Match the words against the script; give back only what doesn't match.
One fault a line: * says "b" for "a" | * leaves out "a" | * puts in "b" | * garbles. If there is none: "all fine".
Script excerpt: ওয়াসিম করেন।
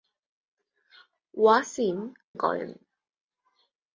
all fine